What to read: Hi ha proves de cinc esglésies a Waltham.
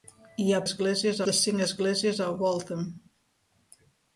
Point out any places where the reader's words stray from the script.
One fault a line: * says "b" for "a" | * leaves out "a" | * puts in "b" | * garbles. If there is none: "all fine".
* says "esglésies" for "proves"